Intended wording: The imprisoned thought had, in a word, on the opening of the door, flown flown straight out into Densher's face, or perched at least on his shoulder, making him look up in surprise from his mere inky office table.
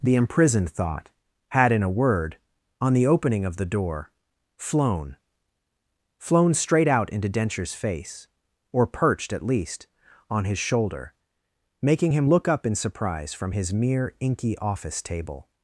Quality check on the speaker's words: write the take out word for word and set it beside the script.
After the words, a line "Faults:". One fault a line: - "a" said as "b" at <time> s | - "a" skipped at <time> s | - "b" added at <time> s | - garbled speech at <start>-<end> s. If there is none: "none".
The imprisoned thought had, in a word, on the opening of the door, flown flown straight out into Densher's face, or perched at least on his shoulder, making him look up in surprise from his mere inky office table.
Faults:
none